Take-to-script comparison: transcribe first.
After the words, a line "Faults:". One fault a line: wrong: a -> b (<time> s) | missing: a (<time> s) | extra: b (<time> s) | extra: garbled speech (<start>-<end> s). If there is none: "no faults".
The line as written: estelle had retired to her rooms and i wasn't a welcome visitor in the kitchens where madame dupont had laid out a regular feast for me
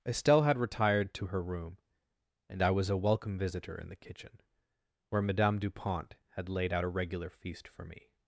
estelle had retired to her room and i was a welcome visitor in the kitchen where madame dupont had laid out a regular feast for me
Faults:
wrong: rooms -> room (1.4 s)
wrong: wasn't -> was (2.7 s)
wrong: kitchens -> kitchen (4.0 s)